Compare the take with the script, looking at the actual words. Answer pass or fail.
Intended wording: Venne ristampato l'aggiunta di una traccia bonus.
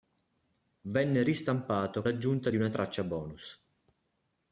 pass